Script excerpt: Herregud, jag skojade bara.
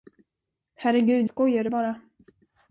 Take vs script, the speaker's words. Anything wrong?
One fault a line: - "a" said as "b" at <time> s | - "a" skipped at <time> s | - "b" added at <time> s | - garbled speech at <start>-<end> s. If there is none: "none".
- "jag" skipped at 1.3 s